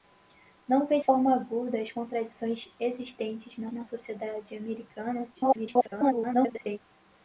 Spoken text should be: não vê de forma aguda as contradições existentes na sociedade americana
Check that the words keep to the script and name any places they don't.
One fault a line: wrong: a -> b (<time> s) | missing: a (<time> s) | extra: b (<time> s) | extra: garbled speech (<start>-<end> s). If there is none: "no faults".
missing: de (1.0 s)
extra: na (3.7 s)
extra: garbled speech (5.3-6.8 s)